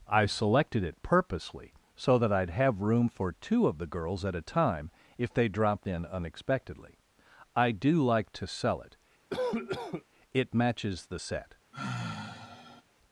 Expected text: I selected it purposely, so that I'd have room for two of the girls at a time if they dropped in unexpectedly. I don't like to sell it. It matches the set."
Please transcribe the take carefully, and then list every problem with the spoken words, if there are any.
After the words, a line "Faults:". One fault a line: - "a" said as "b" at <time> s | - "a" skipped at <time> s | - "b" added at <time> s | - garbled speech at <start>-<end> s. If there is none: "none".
I selected it purposely, so that I'd have room for two of the girls at a time if they dropped in unexpectedly. I do like to sell it. It matches the set."
Faults:
- "don't" said as "do" at 7.7 s